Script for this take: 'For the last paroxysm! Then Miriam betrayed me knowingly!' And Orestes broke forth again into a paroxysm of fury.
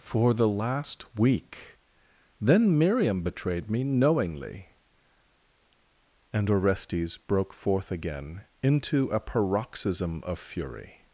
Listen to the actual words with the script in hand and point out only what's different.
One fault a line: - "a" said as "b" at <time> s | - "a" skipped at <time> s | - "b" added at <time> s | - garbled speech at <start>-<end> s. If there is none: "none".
- "paroxysm" said as "week" at 1.1 s